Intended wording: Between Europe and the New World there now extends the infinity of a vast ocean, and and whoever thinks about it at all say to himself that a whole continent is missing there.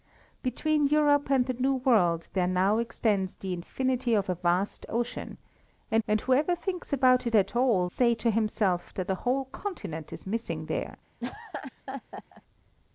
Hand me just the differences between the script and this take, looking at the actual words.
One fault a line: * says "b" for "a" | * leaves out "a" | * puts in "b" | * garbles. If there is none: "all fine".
all fine